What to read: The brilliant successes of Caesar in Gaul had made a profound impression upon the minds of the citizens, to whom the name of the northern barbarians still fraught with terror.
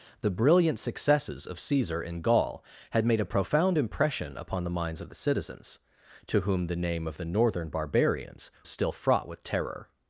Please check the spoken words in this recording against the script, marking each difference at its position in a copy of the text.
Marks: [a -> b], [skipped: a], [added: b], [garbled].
The brilliant successes of Caesar in Gaul had made a profound impression upon the minds of the citizens, to whom the name of the northern barbarians still fraught with terror.